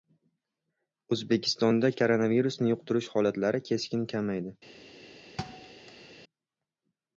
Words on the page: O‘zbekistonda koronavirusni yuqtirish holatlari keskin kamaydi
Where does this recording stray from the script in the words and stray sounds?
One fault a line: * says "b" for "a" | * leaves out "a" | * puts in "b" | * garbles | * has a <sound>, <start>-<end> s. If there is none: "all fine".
* has a thud, 5.4-6.1 s